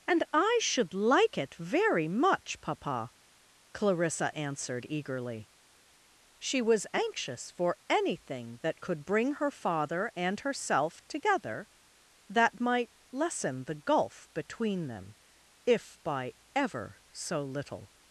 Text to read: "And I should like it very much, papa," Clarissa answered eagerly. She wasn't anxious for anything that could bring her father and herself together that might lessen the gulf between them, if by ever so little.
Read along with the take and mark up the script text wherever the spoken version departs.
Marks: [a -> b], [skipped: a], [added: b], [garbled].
"And I should like it very much, papa," Clarissa answered eagerly. She [wasn't -> was] anxious for anything that could bring her father and herself together that might lessen the gulf between them, if by ever so little.